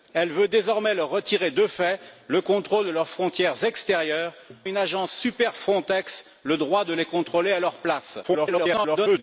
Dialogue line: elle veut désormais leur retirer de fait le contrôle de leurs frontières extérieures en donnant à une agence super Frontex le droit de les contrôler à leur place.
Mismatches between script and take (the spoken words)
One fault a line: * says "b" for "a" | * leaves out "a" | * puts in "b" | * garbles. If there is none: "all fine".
* leaves out "en donnant"
* garbles